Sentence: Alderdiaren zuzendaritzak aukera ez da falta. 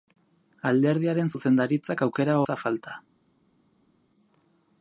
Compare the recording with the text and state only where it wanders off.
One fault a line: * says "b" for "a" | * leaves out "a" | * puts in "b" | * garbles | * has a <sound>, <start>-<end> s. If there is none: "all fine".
all fine